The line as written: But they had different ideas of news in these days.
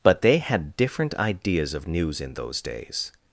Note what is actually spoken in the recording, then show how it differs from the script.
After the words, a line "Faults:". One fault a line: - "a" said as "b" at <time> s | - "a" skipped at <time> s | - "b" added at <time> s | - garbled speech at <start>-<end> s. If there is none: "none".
But they had different ideas of news in those days.
Faults:
- "these" said as "those" at 2.3 s